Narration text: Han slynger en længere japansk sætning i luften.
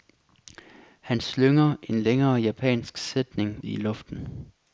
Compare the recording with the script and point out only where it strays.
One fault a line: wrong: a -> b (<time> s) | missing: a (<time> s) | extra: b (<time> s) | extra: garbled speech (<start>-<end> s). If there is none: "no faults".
no faults